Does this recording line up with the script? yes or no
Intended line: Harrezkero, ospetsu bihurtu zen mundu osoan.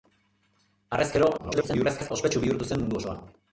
no